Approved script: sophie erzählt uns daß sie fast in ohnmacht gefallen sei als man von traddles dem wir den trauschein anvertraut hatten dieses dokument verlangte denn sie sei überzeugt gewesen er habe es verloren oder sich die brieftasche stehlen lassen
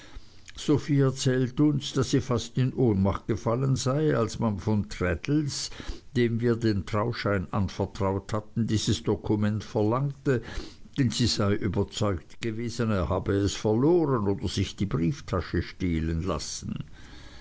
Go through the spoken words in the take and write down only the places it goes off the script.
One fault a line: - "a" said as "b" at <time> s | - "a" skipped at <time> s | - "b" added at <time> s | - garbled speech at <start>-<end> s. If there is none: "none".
none